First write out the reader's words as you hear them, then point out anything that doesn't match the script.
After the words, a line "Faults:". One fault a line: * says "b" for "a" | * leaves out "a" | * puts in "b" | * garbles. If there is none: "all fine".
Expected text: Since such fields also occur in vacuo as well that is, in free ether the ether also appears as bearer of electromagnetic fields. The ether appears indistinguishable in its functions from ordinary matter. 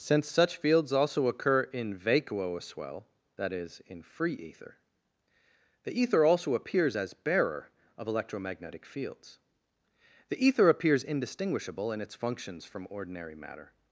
Since such fields also occur in vacuo as well that is, in free ether the ether also appears as bearer of electromagnetic fields. The ether appears indistinguishable in its functions from ordinary matter.
Faults:
all fine